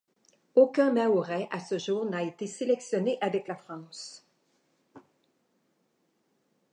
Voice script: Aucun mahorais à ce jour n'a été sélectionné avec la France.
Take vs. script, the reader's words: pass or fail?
pass